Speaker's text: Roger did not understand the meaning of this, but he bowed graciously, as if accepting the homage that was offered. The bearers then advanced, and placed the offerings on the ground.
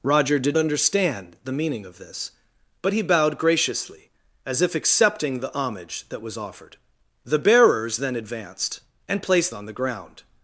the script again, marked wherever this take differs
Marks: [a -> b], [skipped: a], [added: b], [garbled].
Roger did [skipped: not] understand the meaning of this, but he bowed graciously, as if accepting the homage that was offered. The bearers then advanced, and placed [skipped: the offerings] on the ground.